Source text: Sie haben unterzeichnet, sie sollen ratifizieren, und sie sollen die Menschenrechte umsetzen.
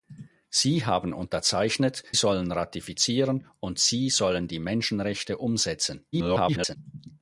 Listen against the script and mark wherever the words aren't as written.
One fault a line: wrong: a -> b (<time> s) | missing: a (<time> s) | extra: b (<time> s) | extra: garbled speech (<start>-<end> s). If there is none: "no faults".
missing: sie (2.0 s)
extra: garbled speech (6.1-6.8 s)